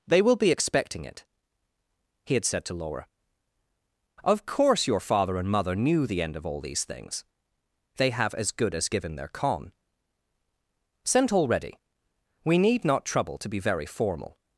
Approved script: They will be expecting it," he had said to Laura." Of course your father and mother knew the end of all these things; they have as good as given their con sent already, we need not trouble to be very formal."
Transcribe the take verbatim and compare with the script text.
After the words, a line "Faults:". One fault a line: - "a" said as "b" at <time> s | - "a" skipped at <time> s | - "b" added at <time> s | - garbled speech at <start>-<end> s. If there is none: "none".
They will be expecting it," he had said to Laura." Of course your father and mother knew the end of all these things; they have as good as given their con sent already, we need not trouble to be very formal."
Faults:
none